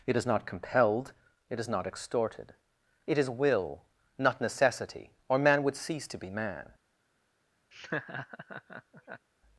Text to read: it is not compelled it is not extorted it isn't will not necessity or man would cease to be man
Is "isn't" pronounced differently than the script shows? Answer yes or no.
yes